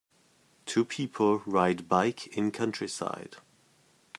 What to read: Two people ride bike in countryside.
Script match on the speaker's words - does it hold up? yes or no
yes